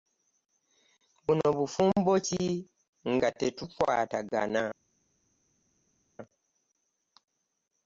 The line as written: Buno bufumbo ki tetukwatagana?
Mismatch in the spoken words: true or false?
true